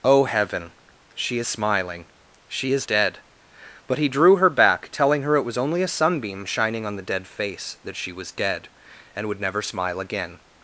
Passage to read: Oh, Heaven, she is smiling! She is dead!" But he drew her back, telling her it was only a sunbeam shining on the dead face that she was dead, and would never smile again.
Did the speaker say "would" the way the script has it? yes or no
yes